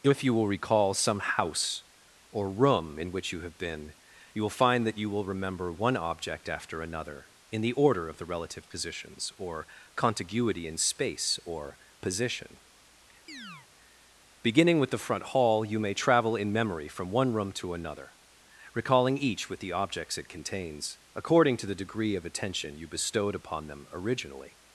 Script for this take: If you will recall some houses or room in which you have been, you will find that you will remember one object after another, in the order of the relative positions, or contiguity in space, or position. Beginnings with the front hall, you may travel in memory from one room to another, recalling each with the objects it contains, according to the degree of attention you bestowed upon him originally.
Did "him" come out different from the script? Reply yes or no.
yes